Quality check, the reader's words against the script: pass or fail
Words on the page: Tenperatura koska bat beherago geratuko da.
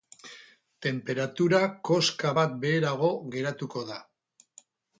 pass